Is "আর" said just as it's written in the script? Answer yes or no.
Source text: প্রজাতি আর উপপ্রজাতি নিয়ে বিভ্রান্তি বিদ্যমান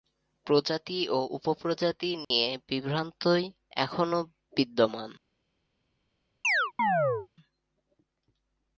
no